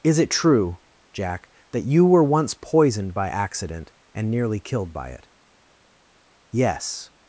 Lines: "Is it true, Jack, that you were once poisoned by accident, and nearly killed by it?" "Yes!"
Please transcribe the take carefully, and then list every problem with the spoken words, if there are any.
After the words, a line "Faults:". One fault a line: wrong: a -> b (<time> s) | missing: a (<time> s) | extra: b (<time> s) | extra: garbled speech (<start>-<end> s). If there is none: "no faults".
"Is it true, Jack, that you were once poisoned by accident, and nearly killed by it?" "Yes!"
Faults:
no faults